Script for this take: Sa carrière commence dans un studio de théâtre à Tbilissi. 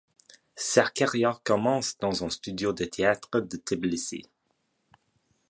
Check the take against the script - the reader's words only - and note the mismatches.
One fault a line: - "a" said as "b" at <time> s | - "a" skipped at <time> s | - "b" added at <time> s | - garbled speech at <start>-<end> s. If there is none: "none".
- "à" said as "de" at 3.4 s